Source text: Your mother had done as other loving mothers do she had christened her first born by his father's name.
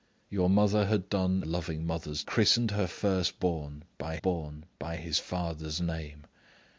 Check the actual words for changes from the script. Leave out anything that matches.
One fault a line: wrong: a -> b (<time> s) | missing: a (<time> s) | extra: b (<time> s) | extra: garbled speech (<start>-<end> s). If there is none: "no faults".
missing: as other (1.4 s)
missing: do she had (2.2 s)
extra: born by (4.2 s)